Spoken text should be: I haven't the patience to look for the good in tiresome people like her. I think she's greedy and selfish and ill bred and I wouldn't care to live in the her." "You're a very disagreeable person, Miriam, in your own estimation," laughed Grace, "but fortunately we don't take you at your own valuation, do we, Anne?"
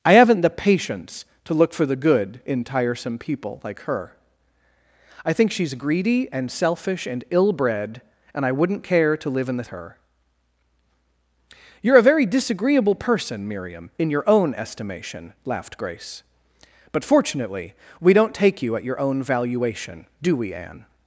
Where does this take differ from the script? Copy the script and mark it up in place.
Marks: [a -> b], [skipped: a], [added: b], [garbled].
I haven't the patience to look for the good in tiresome people like her. I think she's greedy and selfish and ill bred and I wouldn't care to live in the her." "You're a very disagreeable person, Miriam, in your own estimation," laughed Grace, "but fortunately we don't take you at your own valuation, do we, Anne?"